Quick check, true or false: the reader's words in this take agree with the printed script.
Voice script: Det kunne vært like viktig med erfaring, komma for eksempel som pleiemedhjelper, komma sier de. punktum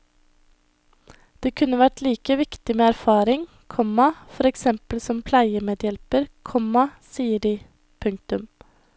true